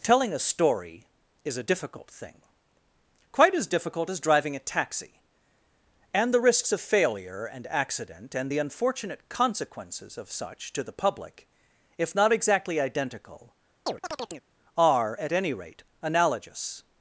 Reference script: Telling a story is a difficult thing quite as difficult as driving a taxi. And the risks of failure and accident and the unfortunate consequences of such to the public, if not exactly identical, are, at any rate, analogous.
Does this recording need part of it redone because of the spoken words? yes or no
no